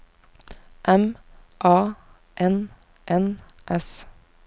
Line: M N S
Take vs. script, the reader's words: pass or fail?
fail